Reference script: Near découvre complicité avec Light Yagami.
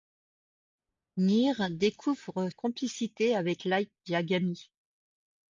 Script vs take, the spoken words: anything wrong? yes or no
no